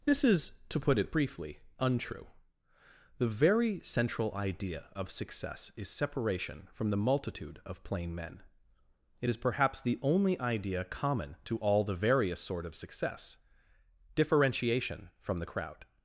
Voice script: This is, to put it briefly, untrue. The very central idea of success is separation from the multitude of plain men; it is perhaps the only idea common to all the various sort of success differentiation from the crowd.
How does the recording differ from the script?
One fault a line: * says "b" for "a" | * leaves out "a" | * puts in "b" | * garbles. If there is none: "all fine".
all fine